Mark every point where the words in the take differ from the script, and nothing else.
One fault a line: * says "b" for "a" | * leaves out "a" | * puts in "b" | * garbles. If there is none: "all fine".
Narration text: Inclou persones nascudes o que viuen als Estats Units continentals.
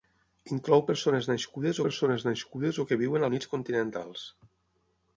* puts in "persones nascudes"
* leaves out "als Estats"